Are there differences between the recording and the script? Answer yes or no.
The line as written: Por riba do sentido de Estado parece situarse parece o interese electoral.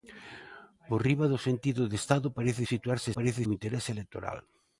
no